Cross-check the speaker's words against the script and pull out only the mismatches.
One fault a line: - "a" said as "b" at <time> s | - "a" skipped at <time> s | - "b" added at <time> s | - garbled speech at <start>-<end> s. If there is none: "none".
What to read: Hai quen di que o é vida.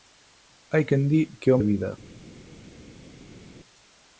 none